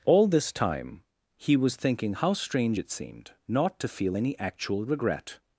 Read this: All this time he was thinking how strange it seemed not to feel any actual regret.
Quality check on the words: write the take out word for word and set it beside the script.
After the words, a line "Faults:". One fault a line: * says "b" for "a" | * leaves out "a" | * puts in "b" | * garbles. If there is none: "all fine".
All this time he was thinking how strange it seemed not to feel any actual regret.
Faults:
all fine